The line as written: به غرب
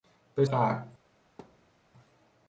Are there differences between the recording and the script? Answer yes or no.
no